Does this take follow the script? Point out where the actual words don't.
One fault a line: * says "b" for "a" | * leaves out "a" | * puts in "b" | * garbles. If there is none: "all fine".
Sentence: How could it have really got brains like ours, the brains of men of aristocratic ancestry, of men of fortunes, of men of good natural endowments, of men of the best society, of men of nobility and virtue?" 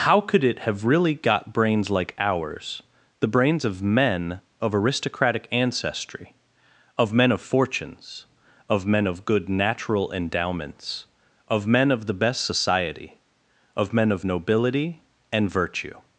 all fine